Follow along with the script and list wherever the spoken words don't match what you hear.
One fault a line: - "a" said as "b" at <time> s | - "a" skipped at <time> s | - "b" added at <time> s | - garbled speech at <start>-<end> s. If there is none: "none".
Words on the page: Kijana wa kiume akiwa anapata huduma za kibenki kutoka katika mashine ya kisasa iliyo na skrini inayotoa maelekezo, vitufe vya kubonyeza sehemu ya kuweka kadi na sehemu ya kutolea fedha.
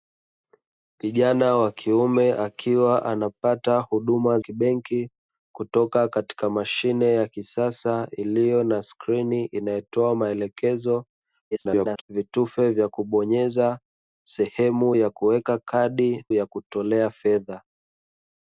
- "za" skipped at 4.4 s
- garbled speech at 11.5-12.0 s
- "na sehemu" skipped at 16.2 s